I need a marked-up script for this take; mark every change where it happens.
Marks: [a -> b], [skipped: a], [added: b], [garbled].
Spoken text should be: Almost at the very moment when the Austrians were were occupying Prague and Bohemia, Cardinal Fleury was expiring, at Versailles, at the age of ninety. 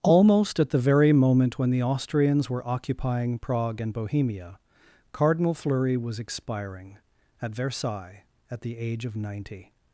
Almost at the very moment when the Austrians were [skipped: were] occupying Prague and Bohemia, Cardinal Fleury was expiring, at Versailles, at the age of ninety.